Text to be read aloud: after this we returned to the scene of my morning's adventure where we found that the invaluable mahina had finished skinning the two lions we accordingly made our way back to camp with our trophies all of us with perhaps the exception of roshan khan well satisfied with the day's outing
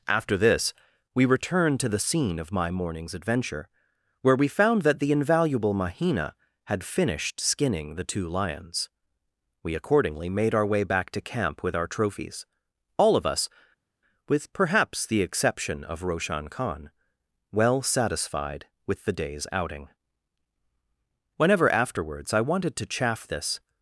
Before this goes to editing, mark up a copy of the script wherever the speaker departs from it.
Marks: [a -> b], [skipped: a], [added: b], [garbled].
after this we returned to the scene of my morning's adventure where we found that the invaluable mahina had finished skinning the two lions we accordingly made our way back to camp with our trophies all of us with perhaps the exception of roshan khan well satisfied with the day's outing [added: whenever afterwards i wanted to chaff this]